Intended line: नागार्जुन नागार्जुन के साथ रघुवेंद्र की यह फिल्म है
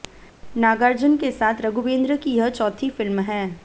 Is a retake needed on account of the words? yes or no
yes